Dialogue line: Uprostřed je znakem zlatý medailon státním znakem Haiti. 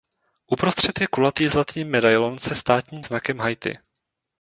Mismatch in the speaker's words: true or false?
true